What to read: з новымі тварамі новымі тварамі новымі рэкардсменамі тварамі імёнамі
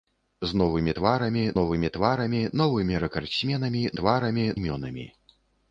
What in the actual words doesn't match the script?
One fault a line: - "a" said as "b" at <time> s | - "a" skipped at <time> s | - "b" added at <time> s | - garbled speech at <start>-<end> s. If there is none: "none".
none